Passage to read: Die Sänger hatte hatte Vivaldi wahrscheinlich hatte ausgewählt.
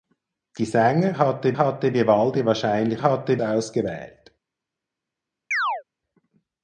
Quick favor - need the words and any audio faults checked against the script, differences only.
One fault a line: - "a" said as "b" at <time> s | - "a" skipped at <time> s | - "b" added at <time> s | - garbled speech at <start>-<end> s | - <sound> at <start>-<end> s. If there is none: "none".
- chirp at 5.5-5.8 s